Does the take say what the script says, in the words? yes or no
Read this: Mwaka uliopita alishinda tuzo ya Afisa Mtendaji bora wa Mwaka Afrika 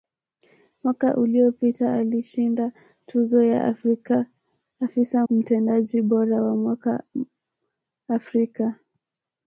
yes